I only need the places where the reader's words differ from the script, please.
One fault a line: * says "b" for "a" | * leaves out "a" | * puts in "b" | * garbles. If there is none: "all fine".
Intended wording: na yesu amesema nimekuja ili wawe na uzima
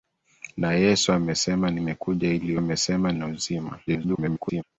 * says "amesema" for "wawe"
* garbles